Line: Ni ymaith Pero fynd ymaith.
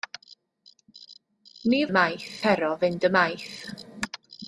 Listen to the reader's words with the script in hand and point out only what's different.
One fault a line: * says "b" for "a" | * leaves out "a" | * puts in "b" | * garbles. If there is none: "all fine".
all fine